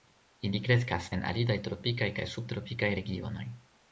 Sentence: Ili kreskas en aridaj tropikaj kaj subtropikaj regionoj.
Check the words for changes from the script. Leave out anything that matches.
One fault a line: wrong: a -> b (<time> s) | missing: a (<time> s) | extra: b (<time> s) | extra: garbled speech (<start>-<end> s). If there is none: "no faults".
no faults